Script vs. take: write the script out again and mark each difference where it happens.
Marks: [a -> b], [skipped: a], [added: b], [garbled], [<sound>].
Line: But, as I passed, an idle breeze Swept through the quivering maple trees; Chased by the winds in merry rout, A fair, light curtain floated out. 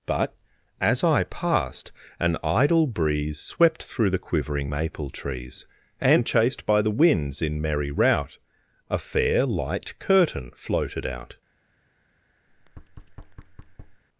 But, as I passed, an idle breeze Swept through the quivering maple trees; [added: and] Chased by the winds in merry rout, A fair, light curtain floated out. [thud]